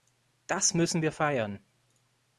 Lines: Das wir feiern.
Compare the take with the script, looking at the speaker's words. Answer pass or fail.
fail